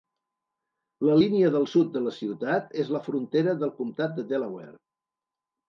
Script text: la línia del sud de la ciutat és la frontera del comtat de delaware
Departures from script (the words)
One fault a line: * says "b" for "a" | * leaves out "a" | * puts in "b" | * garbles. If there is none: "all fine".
all fine